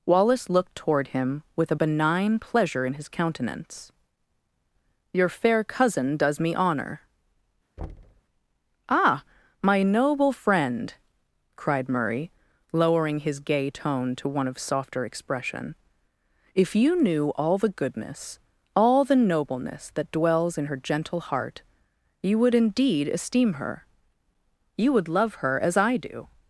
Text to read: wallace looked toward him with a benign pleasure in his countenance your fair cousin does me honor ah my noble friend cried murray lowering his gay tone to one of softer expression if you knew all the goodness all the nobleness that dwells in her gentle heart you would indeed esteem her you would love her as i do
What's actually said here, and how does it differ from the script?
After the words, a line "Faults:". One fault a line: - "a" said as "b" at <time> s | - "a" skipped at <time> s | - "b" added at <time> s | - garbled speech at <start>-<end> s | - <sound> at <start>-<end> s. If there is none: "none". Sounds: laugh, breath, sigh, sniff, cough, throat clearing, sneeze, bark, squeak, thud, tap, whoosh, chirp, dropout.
wallace looked toward him with a benign pleasure in his countenance your fair cousin does me honor ah my noble friend cried murray lowering his gay tone to one of softer expression if you knew all the goodness all the nobleness that dwells in her gentle heart you would indeed esteem her you would love her as i do
Faults:
- thud at 7.8-8.2 s